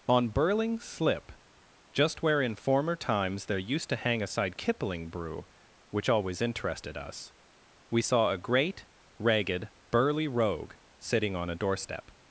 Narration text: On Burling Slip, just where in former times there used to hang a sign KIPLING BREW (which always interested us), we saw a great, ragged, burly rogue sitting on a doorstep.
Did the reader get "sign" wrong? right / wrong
wrong